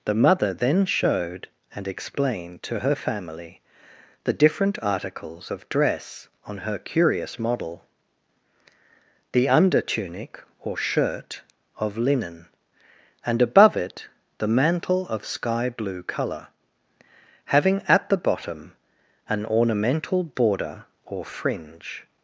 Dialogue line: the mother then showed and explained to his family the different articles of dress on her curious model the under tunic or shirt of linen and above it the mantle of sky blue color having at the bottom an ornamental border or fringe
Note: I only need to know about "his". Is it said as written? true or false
false